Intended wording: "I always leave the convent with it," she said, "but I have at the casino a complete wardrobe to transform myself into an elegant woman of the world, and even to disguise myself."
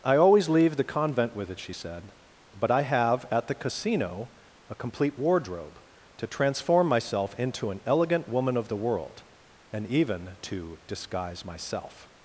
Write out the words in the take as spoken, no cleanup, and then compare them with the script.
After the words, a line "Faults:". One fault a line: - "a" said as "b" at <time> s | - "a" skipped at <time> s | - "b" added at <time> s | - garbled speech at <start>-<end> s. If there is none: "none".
"I always leave the convent with it," she said, "but I have at the casino a complete wardrobe to transform myself into an elegant woman of the world, and even to disguise myself."
Faults:
none